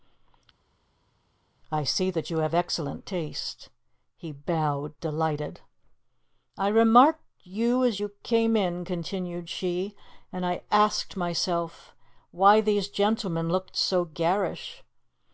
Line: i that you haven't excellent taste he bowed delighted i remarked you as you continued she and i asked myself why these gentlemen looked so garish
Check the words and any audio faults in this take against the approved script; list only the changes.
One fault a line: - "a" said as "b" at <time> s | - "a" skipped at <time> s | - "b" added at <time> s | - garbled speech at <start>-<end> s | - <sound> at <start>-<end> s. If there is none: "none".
- "see" added at 1.8 s
- "haven't" said as "have" at 2.4 s
- "came in" added at 8.2 s